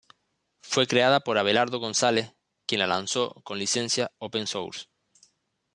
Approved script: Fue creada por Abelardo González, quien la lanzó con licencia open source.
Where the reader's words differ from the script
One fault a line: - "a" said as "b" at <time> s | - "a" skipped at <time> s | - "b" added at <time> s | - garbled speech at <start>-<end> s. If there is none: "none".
none